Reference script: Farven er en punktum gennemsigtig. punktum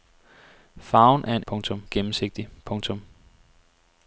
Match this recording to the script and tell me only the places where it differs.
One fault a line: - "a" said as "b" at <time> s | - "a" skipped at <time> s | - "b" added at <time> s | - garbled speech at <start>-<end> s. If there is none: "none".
none